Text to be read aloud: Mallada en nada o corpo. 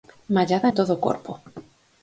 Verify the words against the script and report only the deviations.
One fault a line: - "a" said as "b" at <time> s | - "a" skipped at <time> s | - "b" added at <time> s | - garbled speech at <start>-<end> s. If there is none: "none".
- "nada" said as "todo" at 0.7 s